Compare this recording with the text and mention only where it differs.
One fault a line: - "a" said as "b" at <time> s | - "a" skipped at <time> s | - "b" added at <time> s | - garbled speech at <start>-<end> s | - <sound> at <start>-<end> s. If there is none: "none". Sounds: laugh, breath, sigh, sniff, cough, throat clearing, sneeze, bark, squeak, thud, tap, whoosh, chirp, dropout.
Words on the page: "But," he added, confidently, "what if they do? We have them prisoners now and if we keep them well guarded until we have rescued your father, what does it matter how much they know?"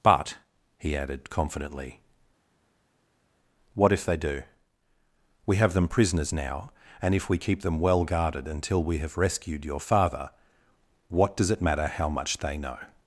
none